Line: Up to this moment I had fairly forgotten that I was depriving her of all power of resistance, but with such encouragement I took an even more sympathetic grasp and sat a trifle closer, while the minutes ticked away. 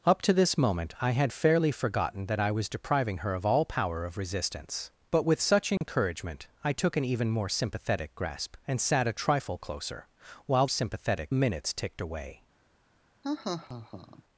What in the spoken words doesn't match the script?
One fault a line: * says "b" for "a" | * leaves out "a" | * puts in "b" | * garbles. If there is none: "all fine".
* says "sympathetic" for "the"